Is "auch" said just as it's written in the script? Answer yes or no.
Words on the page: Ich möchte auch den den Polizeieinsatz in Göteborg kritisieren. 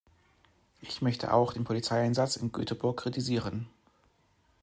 yes